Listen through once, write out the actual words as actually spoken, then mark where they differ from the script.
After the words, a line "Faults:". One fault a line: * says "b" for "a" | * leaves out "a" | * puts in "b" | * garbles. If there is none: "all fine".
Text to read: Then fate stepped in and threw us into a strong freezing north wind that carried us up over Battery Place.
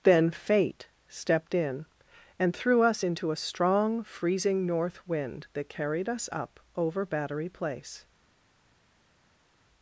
Then fate stepped in and threw us into a strong freezing north wind that carried us up over Battery Place.
Faults:
all fine